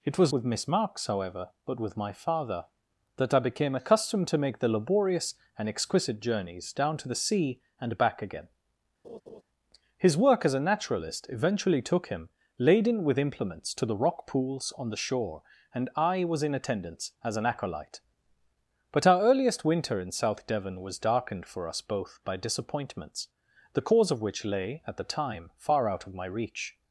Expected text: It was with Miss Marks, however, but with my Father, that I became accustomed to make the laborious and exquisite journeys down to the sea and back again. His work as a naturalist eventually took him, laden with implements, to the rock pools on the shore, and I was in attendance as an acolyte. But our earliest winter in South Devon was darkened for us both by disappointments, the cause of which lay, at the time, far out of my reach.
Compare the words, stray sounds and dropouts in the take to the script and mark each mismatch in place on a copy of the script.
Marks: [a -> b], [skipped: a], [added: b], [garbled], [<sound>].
It was with Miss Marks, however, but with my Father, that I became accustomed to make the laborious and exquisite journeys down to the sea and back again. [laugh] His work as a naturalist eventually took him, laden with implements, to the rock pools on the shore, and I was in attendance as an acolyte. But our earliest winter in South Devon was darkened for us both by disappointments, the cause of which lay, at the time, far out of my reach.